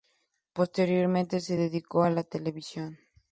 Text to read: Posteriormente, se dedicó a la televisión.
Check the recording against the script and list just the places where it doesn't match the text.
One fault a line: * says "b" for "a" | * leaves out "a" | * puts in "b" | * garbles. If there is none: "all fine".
all fine